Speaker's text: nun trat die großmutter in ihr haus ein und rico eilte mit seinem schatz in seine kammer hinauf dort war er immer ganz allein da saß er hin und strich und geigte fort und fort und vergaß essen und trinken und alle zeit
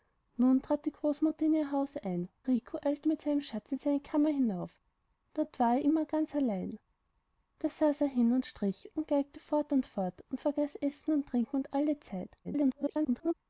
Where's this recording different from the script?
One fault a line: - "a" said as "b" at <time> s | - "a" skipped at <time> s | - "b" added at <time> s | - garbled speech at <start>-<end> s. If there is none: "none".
- "und" skipped at 2.3 s
- garbled speech at 12.4-13.3 s